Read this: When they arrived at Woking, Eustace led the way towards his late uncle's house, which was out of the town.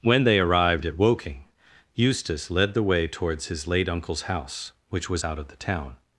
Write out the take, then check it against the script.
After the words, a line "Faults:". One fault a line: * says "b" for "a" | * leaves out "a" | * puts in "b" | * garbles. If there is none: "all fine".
When they arrived at Woking, Eustace led the way towards his late uncle's house, which was out of the town.
Faults:
all fine